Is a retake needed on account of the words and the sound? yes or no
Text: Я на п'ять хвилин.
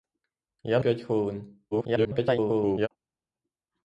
yes